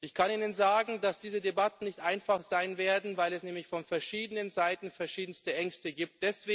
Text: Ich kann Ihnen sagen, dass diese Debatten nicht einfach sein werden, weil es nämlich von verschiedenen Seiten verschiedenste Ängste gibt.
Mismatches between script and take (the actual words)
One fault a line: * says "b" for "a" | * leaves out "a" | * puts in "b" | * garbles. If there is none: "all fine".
all fine